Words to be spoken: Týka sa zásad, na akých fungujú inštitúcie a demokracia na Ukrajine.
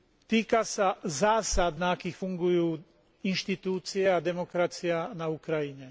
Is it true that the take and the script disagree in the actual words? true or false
false